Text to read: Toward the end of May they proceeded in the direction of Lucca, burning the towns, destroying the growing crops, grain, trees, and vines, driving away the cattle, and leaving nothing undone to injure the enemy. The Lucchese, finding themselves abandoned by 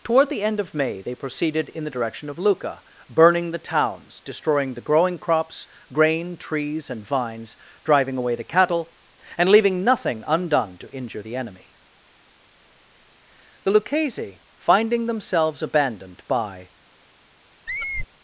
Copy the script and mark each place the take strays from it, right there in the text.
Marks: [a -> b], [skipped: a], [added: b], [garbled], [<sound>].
Toward the end of May they proceeded in the direction of Lucca, burning the towns, destroying the growing crops, grain, trees, and vines, driving away the cattle, and leaving nothing undone to injure the enemy. The Lucchese, finding themselves abandoned by [squeak]